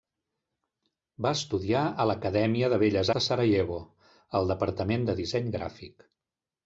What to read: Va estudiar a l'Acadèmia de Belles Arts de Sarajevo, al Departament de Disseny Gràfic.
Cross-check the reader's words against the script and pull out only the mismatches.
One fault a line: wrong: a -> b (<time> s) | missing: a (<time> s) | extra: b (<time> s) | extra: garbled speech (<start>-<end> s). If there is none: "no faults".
missing: Arts (3.1 s)